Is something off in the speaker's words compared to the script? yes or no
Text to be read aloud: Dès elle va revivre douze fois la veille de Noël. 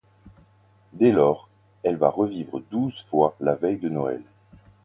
yes